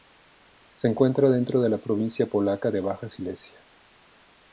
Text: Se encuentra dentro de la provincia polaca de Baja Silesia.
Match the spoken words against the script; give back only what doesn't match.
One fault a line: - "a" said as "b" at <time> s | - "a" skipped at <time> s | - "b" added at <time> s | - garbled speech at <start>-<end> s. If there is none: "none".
none